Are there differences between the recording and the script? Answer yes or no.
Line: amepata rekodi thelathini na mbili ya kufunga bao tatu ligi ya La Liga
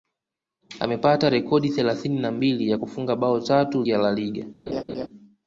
yes